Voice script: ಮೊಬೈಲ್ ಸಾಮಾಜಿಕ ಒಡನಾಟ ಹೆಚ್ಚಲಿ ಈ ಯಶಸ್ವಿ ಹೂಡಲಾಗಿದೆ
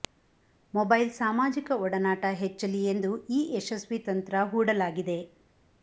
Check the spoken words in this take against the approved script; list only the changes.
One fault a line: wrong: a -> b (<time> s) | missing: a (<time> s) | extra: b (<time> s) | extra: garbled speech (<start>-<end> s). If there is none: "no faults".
extra: ಎಂದು (2.9 s)
extra: ತಂತ್ರ (4.1 s)